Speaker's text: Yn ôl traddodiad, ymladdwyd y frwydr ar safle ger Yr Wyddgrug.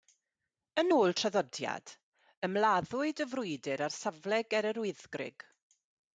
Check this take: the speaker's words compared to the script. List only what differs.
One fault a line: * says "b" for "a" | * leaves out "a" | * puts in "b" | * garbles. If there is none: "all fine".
all fine